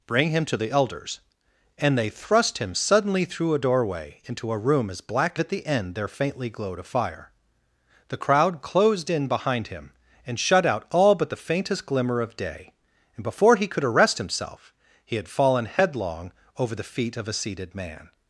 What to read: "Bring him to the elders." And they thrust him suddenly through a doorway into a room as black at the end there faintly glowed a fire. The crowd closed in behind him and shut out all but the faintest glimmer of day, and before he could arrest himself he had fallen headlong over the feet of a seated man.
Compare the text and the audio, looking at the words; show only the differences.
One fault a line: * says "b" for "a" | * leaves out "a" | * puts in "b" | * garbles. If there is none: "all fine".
all fine